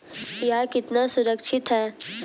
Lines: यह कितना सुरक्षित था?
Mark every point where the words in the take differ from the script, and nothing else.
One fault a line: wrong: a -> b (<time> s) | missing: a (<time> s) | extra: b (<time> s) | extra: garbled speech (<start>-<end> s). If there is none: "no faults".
wrong: था -> है (1.7 s)